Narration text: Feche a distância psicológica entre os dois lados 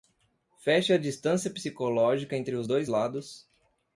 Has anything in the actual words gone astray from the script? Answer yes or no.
no